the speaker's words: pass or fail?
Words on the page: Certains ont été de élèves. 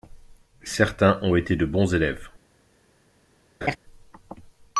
fail